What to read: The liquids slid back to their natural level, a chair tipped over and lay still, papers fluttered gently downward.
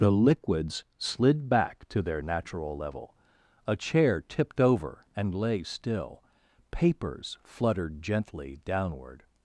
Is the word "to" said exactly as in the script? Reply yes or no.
yes